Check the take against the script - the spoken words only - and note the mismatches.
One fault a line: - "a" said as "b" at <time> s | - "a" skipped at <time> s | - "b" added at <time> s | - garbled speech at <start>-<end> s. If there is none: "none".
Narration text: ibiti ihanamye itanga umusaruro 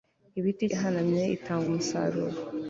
none